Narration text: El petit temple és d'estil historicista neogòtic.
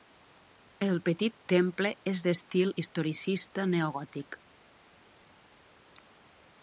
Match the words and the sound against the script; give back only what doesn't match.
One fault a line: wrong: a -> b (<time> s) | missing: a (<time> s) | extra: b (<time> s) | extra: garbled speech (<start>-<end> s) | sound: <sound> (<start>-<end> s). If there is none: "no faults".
no faults